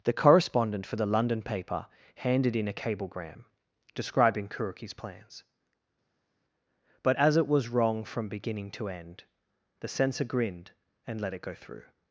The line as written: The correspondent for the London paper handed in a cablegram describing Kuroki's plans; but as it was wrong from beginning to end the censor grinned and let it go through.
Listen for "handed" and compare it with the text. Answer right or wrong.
right